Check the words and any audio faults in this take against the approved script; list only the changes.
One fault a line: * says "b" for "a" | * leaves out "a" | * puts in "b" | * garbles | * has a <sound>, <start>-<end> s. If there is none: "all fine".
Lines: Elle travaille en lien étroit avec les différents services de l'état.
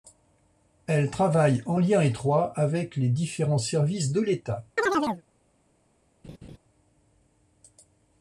* has a chirp, 4.8-5.2 s
* has a laugh, 6.2-6.6 s